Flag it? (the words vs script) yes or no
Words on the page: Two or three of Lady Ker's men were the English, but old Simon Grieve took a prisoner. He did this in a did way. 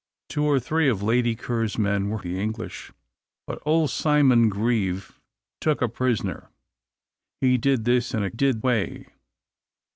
no